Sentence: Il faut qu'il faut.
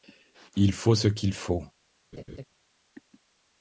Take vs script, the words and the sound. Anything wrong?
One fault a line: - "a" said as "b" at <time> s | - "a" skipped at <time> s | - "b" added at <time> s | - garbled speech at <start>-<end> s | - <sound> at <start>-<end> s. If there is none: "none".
- "ce" added at 0.9 s
- laugh at 2.1-2.4 s